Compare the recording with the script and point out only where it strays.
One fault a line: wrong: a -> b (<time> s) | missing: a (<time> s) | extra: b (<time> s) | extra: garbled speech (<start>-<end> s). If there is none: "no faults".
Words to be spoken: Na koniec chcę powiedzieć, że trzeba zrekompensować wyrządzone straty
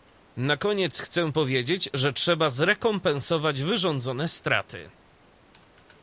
no faults